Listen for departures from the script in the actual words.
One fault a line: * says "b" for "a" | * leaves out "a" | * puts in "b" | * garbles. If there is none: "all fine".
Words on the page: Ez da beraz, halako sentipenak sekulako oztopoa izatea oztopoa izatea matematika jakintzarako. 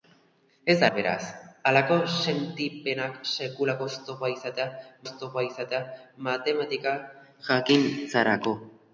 all fine